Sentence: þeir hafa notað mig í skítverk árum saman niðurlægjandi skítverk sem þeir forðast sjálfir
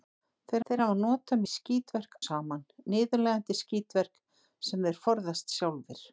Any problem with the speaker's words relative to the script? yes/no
yes